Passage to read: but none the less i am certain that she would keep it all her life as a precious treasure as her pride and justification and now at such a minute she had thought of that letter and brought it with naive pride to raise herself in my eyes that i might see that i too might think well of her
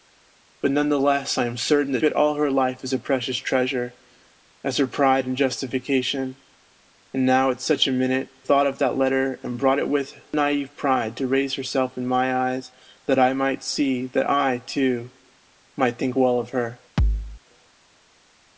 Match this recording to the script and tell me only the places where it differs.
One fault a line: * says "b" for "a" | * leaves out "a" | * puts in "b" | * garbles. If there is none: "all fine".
* leaves out "she would keep"
* leaves out "she had"